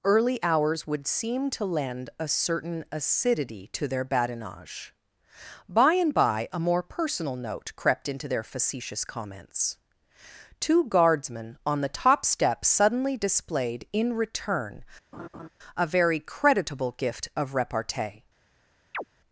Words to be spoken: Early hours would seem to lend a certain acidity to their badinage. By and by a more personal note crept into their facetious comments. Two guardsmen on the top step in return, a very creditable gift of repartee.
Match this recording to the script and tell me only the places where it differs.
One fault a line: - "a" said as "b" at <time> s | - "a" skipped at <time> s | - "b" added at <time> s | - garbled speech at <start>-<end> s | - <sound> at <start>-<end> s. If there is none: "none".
- "suddenly displayed" added at 12.7 s
- laugh at 15.1-15.5 s
- chirp at 18.9-19.0 s